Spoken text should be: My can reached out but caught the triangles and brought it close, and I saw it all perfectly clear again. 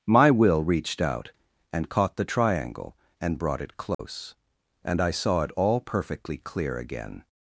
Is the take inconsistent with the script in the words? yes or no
yes